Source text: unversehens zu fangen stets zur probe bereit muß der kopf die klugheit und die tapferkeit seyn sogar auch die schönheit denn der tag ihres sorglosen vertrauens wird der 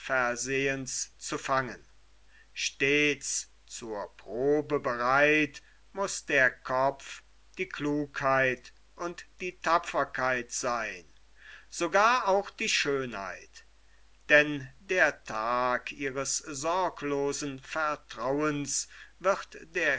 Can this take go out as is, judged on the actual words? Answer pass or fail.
pass